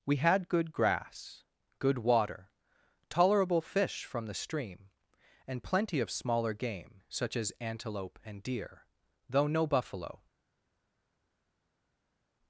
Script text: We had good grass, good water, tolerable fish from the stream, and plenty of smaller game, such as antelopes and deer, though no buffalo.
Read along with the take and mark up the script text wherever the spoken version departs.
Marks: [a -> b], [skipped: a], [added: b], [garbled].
We had good grass, good water, tolerable fish from the stream, and plenty of smaller game, such as [antelopes -> antelope] and deer, though no buffalo.